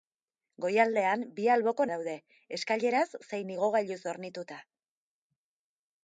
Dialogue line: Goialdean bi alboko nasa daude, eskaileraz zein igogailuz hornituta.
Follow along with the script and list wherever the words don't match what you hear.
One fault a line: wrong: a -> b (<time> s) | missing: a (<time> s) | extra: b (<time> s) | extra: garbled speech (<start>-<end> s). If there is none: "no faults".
missing: nasa (1.9 s)